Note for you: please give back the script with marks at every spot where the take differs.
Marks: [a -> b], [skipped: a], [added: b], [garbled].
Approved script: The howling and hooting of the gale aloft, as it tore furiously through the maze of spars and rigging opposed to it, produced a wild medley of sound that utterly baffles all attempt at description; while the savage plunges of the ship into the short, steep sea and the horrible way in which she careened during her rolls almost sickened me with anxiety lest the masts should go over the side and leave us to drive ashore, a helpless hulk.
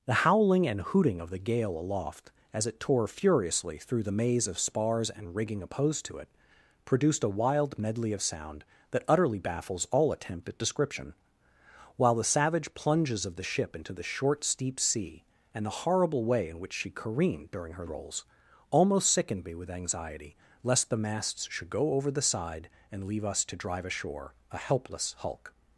The howling and hooting of the gale aloft, as it tore furiously through the maze of spars and rigging opposed to it, produced a wild medley of sound that utterly baffles all attempt at description; while the savage plunges of the ship into the short, steep sea and the horrible way in which she careened during her rolls almost sickened me with anxiety lest the masts should go over the side and leave us to drive ashore, a helpless hulk.